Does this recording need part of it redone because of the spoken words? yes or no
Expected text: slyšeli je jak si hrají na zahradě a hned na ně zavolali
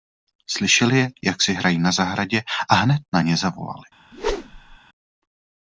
no